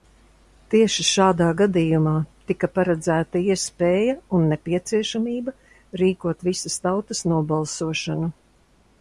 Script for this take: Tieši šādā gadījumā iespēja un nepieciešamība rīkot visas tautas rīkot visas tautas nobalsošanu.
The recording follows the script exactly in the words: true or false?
false